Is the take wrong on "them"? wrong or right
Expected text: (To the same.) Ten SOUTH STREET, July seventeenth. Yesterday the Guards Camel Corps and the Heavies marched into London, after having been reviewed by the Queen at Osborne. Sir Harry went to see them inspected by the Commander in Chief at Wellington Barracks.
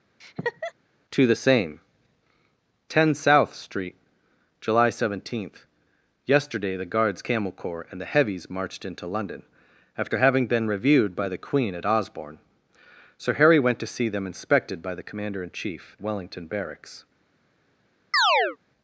right